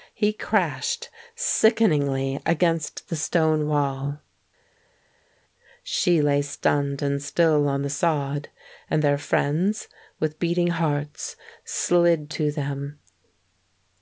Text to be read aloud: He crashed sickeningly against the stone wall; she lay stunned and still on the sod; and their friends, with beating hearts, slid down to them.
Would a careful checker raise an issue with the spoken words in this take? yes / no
yes